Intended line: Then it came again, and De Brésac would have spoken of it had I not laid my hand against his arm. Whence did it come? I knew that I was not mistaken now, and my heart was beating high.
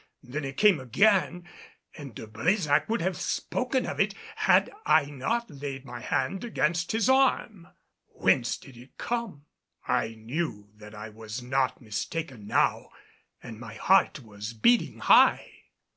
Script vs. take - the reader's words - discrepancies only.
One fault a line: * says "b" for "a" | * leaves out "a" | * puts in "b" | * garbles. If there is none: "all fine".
all fine